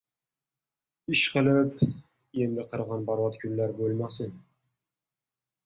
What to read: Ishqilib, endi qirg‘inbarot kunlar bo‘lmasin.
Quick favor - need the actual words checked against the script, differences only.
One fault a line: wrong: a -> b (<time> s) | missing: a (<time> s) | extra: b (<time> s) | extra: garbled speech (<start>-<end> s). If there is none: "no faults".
no faults